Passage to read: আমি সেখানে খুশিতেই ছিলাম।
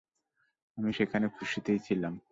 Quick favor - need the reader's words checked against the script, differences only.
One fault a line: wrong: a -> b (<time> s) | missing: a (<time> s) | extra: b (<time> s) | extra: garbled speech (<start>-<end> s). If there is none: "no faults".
no faults